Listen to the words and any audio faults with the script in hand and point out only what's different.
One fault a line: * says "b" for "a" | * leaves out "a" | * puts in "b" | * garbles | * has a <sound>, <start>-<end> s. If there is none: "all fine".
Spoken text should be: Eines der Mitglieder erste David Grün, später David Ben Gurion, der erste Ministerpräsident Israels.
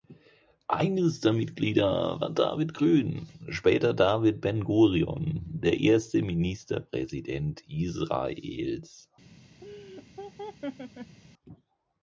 * says "war" for "erste"
* has a laugh, 9.6-11.2 s